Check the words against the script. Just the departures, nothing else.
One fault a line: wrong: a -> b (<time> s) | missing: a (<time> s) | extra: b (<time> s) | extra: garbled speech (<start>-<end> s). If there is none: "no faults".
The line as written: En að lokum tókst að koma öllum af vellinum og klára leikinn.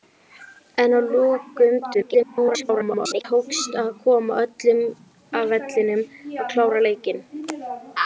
extra: garbled speech (1.9-3.3 s)